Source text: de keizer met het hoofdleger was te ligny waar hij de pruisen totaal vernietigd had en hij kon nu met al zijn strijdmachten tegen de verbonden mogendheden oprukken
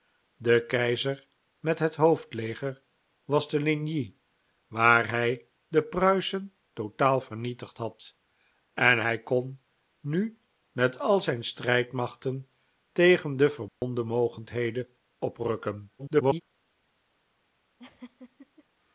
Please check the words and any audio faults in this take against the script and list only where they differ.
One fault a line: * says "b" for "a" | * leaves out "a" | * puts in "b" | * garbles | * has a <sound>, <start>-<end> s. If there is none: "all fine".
* has a dropout, 13.7-13.8 s
* garbles
* has a laugh, 17.8-18.6 s